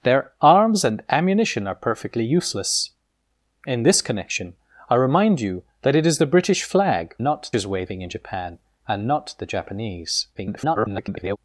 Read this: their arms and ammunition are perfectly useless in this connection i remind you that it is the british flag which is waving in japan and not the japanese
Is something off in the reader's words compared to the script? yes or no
yes